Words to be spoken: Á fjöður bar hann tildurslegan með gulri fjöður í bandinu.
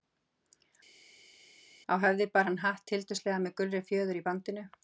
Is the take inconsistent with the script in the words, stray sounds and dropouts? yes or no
yes